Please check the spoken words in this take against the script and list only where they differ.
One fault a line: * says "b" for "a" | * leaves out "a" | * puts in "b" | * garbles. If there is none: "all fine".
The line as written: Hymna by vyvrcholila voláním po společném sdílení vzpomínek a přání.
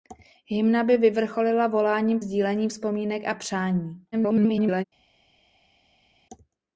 * leaves out "po společném"
* garbles